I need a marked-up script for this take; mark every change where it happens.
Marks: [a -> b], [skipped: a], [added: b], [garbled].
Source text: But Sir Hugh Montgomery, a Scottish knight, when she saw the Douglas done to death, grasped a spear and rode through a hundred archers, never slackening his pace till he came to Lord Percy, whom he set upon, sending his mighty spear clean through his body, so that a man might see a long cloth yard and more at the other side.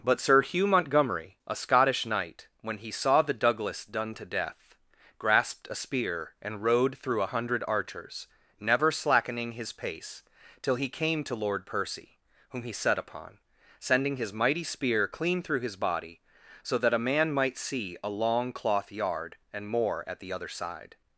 But Sir Hugh Montgomery, a Scottish knight, when [she -> he] saw the Douglas done to death, grasped a spear and rode through a hundred archers, never slackening his pace till he came to Lord Percy, whom he set upon, sending his mighty spear clean through his body, so that a man might see a long cloth yard and more at the other side.